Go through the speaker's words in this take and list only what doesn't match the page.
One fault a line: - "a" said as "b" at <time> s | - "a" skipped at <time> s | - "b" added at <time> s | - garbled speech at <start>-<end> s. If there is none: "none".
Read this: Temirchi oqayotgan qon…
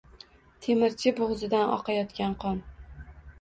- "bo'g'zidan" added at 1.2 s